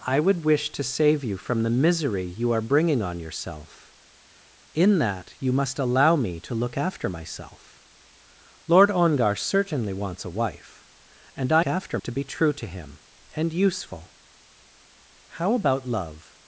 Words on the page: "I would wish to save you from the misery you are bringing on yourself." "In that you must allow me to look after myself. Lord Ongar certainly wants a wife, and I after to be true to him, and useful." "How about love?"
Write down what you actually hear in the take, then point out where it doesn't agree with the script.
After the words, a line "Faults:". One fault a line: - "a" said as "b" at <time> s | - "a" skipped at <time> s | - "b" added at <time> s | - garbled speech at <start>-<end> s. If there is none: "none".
"I would wish to save you from the misery you are bringing on yourself." "In that you must allow me to look after myself. Lord Ongar certainly wants a wife, and I after to be true to him, and useful." "How about love?"
Faults:
none